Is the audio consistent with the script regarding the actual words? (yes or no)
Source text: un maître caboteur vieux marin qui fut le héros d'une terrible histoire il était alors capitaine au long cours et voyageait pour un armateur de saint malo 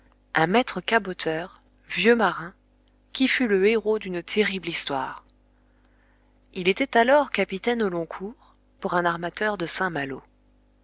no